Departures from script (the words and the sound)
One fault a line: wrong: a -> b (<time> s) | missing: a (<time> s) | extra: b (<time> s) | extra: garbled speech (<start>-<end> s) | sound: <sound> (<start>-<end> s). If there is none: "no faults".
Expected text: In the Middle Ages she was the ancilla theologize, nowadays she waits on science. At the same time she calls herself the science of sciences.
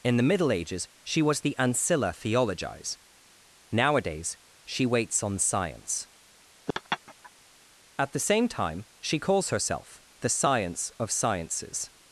sound: laugh (6.7-7.3 s)